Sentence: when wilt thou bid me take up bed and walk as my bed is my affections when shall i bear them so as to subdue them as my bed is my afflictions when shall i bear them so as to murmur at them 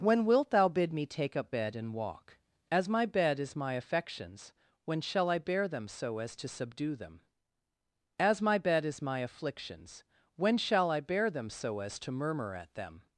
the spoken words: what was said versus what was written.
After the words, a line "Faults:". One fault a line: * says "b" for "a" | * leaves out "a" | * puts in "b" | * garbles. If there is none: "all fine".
when wilt thou bid me take up bed and walk as my bed is my affections when shall i bear them so as to subdue them as my bed is my afflictions when shall i bear them so as to murmur at them
Faults:
all fine